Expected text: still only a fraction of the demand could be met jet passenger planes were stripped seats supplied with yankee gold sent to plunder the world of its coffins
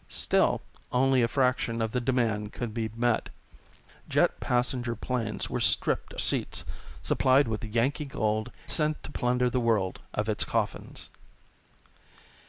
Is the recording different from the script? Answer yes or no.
no